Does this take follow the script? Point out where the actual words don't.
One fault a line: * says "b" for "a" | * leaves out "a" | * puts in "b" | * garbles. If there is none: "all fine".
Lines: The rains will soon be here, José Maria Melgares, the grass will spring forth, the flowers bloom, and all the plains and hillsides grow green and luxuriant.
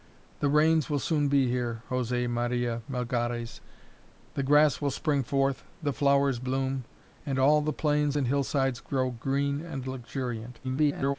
* garbles